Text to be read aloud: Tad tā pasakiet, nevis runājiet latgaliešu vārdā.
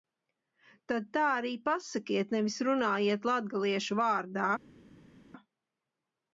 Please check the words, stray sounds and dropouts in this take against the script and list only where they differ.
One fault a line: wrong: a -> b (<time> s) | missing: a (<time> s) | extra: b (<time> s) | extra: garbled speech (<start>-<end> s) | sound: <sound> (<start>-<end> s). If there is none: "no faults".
extra: arī (1.3 s)